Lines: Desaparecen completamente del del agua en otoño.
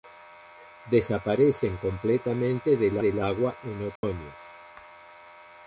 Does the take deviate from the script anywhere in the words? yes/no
no